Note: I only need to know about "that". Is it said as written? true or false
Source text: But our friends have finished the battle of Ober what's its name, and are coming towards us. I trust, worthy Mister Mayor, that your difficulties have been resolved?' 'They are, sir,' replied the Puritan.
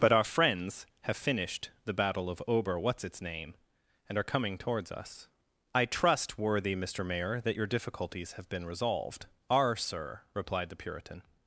true